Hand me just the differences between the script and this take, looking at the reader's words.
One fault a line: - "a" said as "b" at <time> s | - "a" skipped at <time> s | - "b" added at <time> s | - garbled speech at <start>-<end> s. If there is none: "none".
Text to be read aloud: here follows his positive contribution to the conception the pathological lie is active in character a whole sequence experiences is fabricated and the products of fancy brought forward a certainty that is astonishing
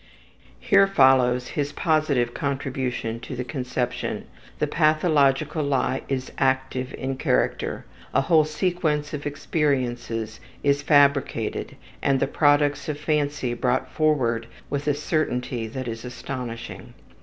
- "of" added at 9.1 s
- "with" added at 14.7 s